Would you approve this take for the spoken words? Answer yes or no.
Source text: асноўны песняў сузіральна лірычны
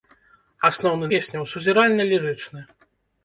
yes